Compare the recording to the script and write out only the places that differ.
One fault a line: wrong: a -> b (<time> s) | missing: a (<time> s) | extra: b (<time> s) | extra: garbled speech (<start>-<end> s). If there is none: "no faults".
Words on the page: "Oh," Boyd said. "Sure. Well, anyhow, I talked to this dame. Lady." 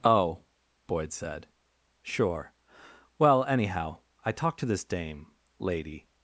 no faults